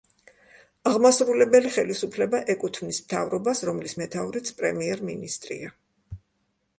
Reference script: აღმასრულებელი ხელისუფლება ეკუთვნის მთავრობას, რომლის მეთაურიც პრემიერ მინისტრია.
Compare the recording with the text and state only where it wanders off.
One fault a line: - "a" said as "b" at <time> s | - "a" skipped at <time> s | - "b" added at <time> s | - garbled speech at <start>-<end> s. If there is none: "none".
none